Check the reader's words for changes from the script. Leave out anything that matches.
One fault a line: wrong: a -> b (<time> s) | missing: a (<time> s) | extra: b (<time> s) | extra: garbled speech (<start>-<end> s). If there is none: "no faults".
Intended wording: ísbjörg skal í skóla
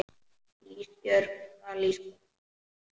no faults